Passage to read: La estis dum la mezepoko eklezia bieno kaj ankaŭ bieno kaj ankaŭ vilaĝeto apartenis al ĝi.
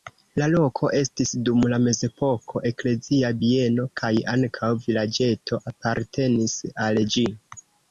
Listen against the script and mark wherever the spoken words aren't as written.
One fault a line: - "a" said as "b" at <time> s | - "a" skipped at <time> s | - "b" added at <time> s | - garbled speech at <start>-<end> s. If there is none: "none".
- "loko" added at 0.5 s
- "bieno kaj ankaŭ" skipped at 4.7 s